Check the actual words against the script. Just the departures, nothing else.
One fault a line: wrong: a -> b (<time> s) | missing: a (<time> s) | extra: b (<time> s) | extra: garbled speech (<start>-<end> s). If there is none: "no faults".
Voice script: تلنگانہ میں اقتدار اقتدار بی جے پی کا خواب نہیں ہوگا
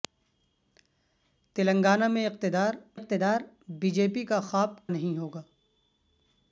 no faults